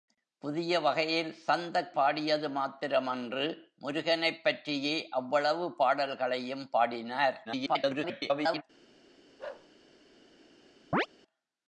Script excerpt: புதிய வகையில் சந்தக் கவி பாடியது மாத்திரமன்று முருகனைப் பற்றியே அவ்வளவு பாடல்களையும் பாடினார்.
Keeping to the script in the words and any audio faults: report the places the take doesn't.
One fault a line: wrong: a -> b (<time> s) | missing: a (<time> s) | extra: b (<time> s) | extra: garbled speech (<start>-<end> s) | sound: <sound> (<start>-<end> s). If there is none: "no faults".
missing: கவி (1.9 s)
extra: garbled speech (7.4-8.6 s)
sound: bark (9.4-9.7 s)
sound: chirp (10.9-11.1 s)